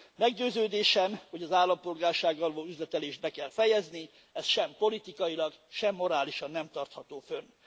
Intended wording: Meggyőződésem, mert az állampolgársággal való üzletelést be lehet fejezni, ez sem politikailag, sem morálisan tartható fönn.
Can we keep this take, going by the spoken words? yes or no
no